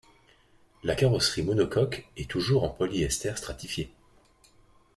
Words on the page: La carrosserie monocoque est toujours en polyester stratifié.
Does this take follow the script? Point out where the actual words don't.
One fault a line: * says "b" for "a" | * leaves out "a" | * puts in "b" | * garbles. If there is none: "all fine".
all fine